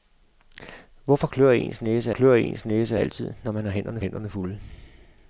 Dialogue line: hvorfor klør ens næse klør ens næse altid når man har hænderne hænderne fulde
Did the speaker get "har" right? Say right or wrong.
right